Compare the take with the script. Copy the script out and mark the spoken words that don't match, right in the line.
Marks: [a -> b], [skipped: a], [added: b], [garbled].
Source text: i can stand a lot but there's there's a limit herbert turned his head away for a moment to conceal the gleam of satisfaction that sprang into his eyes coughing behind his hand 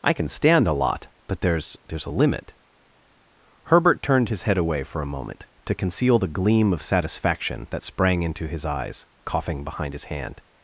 i can stand a lot but there's there's a limit herbert turned his head away for a moment to conceal the gleam of satisfaction that sprang into his eyes coughing behind his hand